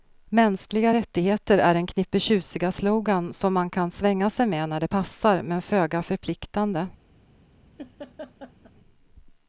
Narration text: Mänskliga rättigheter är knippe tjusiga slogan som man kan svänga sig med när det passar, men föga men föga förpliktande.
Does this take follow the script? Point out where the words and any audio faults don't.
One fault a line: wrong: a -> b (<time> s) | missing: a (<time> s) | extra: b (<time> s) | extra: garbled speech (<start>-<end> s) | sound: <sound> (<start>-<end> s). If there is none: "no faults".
extra: en (1.7 s)
missing: men föga (6.0 s)
sound: laugh (7.8-8.7 s)